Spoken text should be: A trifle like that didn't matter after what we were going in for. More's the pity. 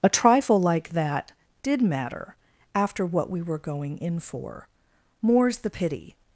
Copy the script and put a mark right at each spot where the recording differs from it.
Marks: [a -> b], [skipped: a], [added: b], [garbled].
A trifle like that [didn't -> did] matter after what we were going in for. More's the pity.